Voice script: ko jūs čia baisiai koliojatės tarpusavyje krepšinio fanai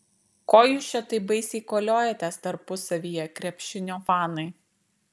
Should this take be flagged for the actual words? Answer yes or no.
yes